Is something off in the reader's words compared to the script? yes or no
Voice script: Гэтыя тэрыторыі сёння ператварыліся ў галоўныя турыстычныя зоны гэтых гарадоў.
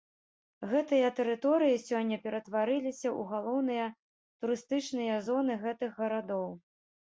no